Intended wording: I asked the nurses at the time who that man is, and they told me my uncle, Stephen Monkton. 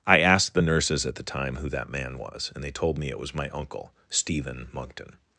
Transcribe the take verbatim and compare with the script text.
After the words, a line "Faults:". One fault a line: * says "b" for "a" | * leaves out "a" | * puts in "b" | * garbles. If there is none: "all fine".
I asked the nurses at the time who that man was, and they told me it was my uncle, Stephen Monkton.
Faults:
* says "was" for "is"
* puts in "it was"